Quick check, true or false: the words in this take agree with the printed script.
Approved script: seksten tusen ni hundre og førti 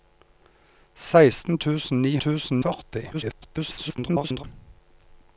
false